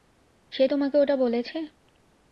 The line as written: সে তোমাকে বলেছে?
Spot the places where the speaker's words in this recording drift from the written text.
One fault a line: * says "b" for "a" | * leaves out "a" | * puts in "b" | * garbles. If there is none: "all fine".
* puts in "ওটা"